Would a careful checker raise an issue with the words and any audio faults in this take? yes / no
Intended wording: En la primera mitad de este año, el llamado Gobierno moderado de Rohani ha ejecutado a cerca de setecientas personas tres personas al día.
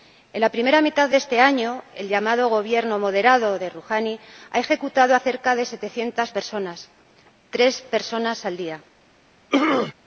yes